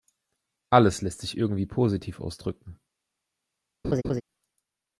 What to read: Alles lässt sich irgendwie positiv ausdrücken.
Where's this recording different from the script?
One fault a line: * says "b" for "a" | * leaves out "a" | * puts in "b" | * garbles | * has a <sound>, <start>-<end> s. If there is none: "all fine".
* has a laugh, 3.8-4.2 s